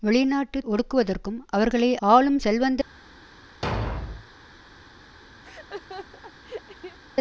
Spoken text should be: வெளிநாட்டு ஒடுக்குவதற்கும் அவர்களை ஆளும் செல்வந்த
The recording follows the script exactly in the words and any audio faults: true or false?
false